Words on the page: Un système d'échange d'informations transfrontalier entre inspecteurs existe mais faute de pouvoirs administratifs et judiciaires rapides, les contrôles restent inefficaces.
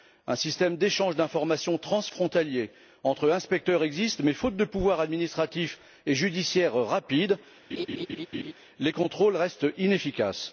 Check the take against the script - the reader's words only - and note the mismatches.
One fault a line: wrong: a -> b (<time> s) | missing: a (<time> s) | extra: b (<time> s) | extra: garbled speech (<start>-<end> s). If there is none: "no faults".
no faults